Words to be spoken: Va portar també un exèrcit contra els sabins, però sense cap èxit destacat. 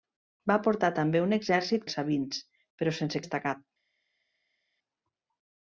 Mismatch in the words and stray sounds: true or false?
true